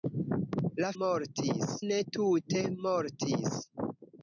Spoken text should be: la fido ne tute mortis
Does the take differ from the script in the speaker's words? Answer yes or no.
yes